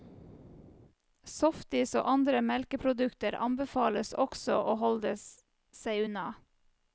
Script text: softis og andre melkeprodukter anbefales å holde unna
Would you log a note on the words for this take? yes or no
yes